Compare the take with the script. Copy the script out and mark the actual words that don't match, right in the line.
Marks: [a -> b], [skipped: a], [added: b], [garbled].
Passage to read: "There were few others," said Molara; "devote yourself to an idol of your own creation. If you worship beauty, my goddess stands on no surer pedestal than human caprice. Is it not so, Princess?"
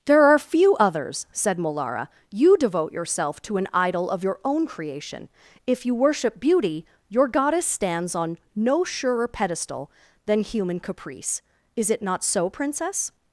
"There [were -> are] few others," said Molara; [added: you] "devote yourself to an idol of your own creation. If you worship beauty, [my -> your] goddess stands on no surer pedestal than human caprice. Is it not so, Princess?"